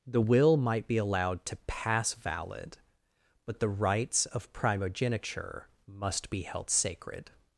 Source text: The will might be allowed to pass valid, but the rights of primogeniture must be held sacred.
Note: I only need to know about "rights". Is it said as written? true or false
true